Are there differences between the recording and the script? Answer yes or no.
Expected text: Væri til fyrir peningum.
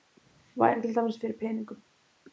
yes